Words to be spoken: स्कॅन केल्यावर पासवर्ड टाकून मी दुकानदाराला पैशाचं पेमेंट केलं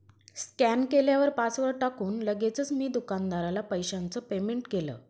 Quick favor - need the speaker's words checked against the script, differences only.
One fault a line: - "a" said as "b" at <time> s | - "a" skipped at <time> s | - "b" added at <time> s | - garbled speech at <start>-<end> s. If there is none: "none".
- "लगेचच" added at 2.2 s